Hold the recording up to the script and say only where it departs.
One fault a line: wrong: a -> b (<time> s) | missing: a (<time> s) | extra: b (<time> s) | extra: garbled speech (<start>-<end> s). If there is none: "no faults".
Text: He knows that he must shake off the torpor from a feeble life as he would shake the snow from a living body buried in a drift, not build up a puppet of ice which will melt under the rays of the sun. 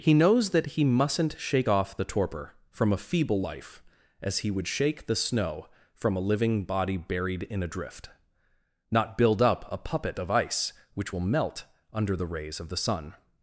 wrong: must -> mustn't (0.8 s)